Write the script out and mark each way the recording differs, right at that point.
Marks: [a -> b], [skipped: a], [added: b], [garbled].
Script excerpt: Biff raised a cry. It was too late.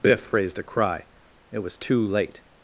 Biff raised a cry. It was too late.